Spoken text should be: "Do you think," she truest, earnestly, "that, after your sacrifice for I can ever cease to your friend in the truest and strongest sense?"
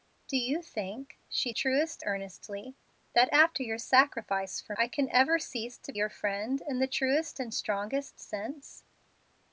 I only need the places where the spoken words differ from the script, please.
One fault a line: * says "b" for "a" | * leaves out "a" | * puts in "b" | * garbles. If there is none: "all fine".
all fine